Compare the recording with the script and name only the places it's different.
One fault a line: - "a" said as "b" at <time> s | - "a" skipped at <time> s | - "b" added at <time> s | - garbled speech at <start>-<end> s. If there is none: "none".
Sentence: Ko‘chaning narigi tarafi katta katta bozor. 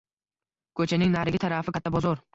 - "katta" skipped at 1.9 s